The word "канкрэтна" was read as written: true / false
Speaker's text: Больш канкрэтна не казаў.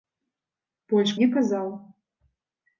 false